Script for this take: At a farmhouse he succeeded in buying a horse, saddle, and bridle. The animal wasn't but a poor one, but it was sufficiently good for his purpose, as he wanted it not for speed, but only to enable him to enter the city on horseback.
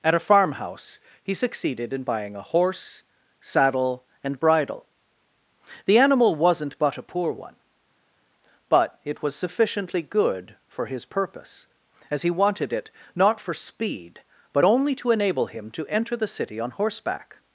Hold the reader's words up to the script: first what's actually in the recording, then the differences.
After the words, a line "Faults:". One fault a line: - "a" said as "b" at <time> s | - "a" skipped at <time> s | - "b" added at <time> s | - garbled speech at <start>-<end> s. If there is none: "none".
At a farmhouse he succeeded in buying a horse, saddle, and bridle. The animal wasn't but a poor one, but it was sufficiently good for his purpose, as he wanted it not for speed, but only to enable him to enter the city on horseback.
Faults:
none